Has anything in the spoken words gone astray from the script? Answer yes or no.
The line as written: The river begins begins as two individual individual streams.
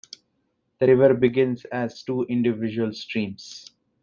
yes